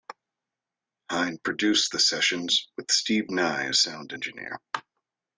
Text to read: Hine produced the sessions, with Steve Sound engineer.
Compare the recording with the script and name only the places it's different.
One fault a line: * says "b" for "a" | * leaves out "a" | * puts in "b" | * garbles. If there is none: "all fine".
* puts in "Nye as"